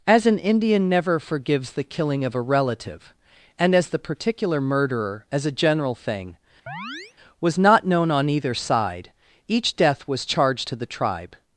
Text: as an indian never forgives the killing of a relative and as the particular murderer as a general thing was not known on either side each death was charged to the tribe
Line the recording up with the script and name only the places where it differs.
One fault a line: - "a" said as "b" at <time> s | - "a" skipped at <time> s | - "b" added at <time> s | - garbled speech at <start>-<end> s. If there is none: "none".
none